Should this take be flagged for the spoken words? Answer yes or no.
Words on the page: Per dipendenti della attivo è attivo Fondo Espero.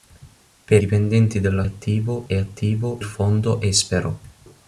no